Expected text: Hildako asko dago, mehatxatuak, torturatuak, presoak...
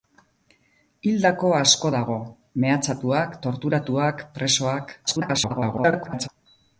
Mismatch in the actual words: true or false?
true